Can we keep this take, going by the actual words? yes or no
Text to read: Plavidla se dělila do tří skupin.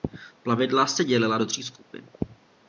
yes